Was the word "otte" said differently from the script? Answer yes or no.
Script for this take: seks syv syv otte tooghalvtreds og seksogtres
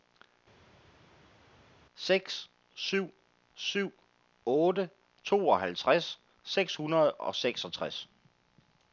no